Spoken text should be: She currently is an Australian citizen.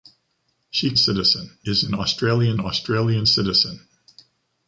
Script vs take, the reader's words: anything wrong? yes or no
yes